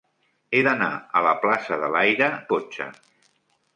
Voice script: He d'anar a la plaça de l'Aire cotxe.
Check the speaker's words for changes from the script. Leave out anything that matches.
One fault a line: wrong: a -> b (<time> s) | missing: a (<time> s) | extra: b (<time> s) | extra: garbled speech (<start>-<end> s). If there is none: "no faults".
no faults